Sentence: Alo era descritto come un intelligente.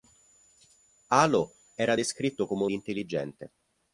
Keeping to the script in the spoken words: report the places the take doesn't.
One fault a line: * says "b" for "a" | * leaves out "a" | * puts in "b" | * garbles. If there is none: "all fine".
all fine